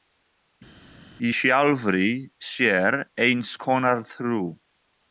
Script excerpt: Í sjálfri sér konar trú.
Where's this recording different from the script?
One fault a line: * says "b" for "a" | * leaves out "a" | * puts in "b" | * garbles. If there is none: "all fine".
* puts in "eins"